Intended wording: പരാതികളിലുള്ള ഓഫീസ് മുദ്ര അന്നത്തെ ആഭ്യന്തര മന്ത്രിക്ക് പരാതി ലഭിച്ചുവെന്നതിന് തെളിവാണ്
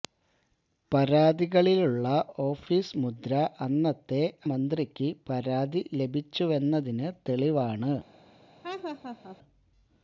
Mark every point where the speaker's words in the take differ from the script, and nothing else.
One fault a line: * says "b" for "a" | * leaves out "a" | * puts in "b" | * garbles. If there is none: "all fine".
* leaves out "ആഭ്യന്തര"